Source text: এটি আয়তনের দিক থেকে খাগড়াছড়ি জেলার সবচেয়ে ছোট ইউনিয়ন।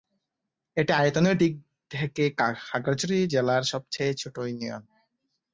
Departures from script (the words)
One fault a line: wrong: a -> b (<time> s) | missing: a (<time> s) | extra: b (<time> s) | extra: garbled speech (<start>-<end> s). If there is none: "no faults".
no faults